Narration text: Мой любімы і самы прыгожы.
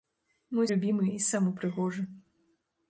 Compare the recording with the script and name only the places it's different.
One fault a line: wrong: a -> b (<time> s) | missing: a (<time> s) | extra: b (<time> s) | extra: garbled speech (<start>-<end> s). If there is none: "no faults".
no faults